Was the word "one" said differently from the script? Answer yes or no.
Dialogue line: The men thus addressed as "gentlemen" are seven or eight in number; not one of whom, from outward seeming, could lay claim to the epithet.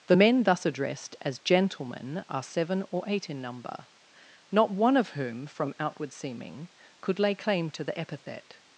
no